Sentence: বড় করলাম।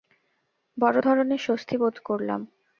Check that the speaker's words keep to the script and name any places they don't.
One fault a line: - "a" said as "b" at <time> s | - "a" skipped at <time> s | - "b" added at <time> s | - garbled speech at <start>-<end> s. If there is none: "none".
- "ধরনের স্বস্তি বোধ" added at 1.0 s